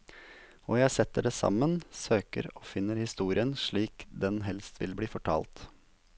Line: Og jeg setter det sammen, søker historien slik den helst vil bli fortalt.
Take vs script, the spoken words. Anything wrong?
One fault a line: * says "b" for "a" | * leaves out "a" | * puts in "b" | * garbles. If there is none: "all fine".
* puts in "og finner"